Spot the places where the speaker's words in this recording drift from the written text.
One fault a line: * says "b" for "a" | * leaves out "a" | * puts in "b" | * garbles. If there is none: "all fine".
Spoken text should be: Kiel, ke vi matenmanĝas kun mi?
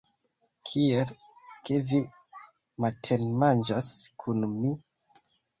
all fine